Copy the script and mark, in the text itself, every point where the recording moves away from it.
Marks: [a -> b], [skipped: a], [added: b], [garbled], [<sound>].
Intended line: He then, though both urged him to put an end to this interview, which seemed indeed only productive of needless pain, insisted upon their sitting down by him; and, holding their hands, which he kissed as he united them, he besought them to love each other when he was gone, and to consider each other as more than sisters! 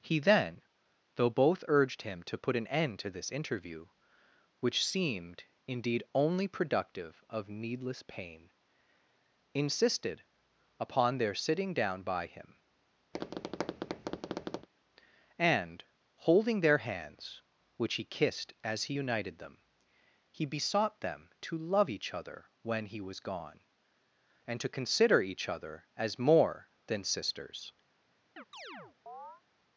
He then, though both urged him to put an end to this interview, which seemed indeed only productive of needless pain, insisted upon their sitting down by him; [tap] and, holding their hands, which he kissed as he united them, he besought them to love each other when he was gone, and to consider each other as more than sisters! [chirp]